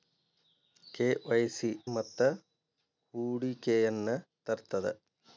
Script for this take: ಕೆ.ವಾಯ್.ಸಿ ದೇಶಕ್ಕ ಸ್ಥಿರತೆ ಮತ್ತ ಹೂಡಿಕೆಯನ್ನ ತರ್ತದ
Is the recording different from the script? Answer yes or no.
yes